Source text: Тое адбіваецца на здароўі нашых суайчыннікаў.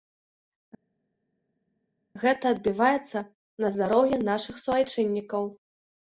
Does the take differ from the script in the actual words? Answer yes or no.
yes